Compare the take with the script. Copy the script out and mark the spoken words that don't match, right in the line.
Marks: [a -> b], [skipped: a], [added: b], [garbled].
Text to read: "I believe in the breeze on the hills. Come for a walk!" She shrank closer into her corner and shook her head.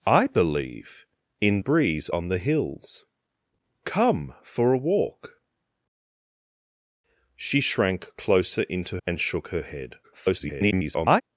"I believe in [skipped: the] breeze on the hills. Come for a walk!" She shrank closer into [skipped: her corner] and shook her head. [garbled]